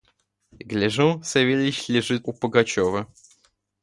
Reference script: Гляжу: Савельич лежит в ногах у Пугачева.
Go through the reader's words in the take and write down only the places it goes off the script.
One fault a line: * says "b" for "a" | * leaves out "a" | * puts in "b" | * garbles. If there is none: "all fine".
* leaves out "ногах"